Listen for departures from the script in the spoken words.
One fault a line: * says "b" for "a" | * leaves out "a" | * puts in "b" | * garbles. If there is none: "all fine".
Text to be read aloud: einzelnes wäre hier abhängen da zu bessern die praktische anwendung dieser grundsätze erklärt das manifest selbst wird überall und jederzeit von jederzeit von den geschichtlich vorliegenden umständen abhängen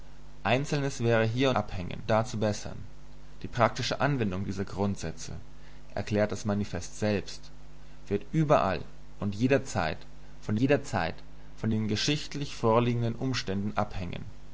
all fine